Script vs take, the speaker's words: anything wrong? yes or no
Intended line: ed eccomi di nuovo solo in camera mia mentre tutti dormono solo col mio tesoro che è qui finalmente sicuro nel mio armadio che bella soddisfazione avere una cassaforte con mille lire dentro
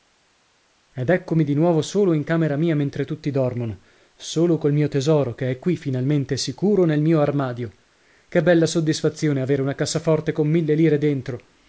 no